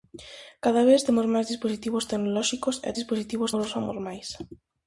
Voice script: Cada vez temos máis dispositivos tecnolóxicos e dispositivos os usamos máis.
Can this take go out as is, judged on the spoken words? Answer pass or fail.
pass